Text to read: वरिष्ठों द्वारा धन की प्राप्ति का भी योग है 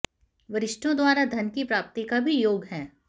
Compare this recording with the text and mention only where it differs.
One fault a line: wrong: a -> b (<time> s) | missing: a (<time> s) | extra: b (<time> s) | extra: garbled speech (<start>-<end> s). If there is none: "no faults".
no faults